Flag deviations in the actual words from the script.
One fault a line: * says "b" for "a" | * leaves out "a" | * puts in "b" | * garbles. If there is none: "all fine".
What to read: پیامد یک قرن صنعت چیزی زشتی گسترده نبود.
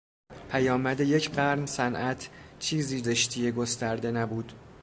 all fine